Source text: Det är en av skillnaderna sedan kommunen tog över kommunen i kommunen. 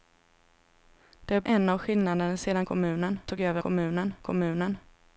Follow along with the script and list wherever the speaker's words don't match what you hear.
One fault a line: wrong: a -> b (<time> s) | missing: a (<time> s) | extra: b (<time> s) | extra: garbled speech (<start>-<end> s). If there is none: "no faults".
no faults